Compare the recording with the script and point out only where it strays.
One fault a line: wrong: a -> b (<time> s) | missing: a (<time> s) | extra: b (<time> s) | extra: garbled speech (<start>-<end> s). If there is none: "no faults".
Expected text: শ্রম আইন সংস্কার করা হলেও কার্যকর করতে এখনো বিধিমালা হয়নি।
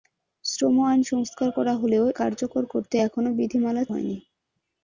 no faults